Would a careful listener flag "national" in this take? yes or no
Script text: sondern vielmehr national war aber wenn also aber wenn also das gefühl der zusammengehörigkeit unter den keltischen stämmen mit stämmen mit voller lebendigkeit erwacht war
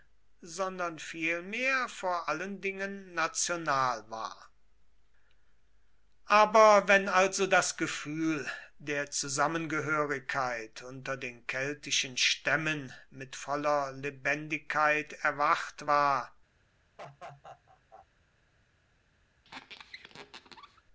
yes